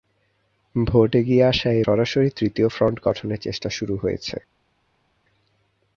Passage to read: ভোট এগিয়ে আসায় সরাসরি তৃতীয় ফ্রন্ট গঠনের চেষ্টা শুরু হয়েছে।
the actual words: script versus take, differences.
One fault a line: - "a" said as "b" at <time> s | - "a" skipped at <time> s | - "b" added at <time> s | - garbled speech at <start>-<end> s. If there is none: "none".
none